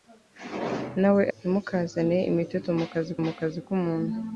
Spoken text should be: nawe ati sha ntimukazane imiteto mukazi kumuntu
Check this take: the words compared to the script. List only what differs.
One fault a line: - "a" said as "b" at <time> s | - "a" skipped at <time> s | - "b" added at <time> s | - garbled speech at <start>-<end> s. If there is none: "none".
- "ati sha" skipped at 1.2 s
- "mukazi" added at 3.2 s